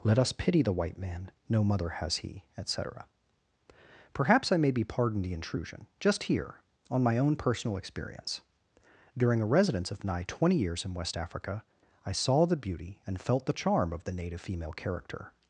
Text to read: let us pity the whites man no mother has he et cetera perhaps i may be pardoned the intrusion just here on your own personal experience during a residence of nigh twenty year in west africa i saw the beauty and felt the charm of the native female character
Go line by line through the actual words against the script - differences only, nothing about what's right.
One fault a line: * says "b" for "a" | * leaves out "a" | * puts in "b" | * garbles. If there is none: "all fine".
* says "white" for "whites"
* says "my" for "your"
* says "years" for "year"